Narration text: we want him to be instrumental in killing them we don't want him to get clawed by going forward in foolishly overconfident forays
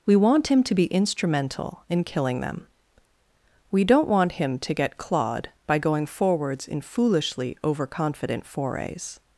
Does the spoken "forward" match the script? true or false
false